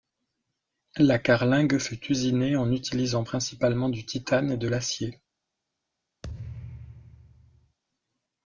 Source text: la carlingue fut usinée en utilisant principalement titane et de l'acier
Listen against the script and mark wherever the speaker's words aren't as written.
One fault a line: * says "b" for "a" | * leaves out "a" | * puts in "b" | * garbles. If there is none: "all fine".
* puts in "du"